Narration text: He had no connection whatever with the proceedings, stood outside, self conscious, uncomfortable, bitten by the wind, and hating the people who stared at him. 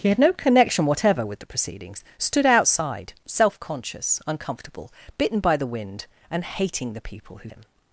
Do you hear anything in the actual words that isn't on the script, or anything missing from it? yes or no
yes